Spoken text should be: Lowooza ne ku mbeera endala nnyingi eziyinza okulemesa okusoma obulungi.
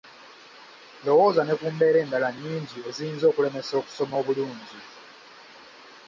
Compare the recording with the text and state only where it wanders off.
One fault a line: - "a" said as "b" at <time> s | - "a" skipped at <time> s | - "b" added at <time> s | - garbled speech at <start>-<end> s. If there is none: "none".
none